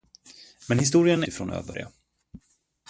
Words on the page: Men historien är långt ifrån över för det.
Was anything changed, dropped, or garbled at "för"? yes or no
yes